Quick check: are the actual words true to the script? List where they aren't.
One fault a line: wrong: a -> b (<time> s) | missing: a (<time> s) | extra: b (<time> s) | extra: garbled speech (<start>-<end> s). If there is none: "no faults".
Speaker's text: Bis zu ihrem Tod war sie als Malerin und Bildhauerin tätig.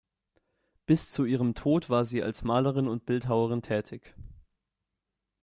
no faults